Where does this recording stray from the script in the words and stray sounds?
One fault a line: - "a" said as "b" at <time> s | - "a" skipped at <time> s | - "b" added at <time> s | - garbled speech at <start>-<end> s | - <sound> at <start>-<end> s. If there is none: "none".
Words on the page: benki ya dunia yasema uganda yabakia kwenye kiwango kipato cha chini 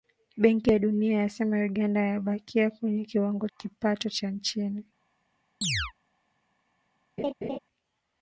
- chirp at 5.6-5.9 s
- laugh at 7.2-7.6 s